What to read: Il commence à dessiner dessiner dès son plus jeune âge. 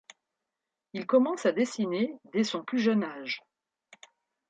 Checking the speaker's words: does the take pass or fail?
fail